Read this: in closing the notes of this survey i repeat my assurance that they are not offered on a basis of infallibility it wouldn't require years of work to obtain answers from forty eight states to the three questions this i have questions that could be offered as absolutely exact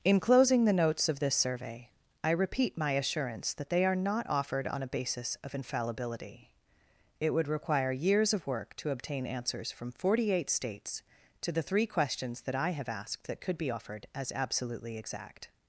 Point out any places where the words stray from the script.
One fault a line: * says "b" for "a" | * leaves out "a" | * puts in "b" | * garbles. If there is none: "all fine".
* says "would" for "wouldn't"
* says "that" for "this"
* says "asked" for "questions"